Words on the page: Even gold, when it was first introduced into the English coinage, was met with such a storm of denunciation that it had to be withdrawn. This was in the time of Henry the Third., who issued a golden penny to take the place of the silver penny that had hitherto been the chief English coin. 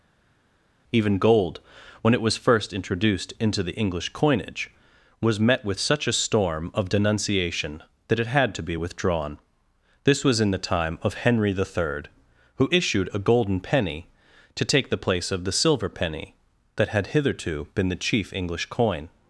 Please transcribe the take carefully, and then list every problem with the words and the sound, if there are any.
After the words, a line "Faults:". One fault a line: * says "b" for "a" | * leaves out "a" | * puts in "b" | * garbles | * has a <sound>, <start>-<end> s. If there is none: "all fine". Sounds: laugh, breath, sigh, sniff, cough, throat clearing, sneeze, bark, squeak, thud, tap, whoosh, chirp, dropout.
Even gold, when it was first introduced into the English coinage, was met with such a storm of denunciation that it had to be withdrawn. This was in the time of Henry the Third., who issued a golden penny to take the place of the silver penny that had hitherto been the chief English coin.
Faults:
all fine